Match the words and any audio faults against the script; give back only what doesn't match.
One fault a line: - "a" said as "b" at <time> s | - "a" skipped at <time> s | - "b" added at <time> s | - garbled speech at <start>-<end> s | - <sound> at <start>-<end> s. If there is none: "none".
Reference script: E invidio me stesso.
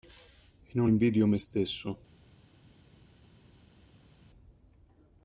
- "non" added at 0.8 s